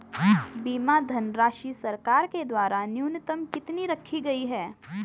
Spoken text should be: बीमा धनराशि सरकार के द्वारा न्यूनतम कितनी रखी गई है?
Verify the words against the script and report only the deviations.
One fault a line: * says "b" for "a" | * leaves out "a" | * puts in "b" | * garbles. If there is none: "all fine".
all fine